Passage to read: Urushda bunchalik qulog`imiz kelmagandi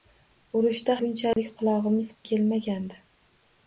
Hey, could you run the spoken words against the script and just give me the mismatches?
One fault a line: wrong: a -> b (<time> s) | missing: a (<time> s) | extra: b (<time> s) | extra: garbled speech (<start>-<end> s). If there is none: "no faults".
no faults